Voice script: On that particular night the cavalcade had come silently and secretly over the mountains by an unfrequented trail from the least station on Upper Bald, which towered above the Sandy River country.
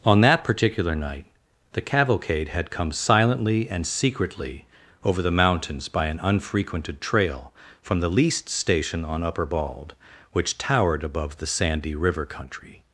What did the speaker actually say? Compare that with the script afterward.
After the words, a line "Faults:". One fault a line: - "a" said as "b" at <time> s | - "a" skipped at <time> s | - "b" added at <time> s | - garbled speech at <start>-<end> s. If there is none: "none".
On that particular night the cavalcade had come silently and secretly over the mountains by an unfrequented trail from the least station on Upper Bald, which towered above the Sandy River country.
Faults:
none